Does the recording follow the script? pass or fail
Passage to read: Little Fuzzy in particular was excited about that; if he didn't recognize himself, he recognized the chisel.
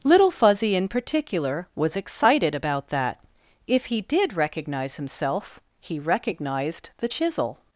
fail